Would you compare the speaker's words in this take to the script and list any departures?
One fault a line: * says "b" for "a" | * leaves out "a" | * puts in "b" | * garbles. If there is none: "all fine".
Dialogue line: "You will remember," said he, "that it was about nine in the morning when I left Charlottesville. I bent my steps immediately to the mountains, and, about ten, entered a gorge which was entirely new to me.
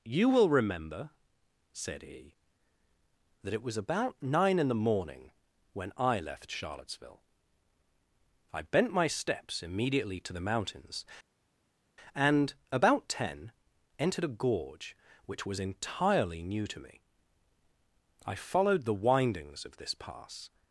* puts in "I followed the windings of this pass"